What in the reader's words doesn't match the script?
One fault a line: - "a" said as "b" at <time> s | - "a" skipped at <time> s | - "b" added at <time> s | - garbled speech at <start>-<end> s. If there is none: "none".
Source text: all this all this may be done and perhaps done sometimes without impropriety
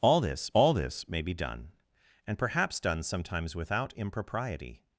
none